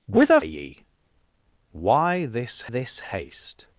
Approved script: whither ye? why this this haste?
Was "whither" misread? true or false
false